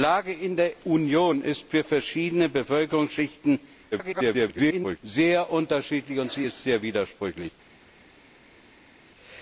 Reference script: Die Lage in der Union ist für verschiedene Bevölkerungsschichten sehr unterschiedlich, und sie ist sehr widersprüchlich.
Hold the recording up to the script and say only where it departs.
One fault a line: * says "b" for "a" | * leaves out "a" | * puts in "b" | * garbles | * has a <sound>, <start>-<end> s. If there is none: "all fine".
* garbles